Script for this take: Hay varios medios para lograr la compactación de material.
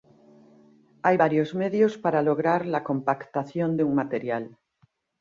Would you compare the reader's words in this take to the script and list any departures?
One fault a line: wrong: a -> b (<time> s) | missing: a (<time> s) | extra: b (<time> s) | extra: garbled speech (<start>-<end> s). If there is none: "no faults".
extra: un (3.8 s)